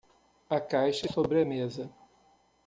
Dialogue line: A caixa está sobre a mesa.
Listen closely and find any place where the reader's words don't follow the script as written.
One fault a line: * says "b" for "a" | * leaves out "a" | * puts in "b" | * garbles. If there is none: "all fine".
* leaves out "está"